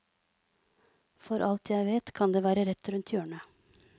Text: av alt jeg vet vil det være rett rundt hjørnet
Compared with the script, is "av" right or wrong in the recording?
wrong